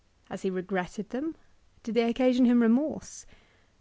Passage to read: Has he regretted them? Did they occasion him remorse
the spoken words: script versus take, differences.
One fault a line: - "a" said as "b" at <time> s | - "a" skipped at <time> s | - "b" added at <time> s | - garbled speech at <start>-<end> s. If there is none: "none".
none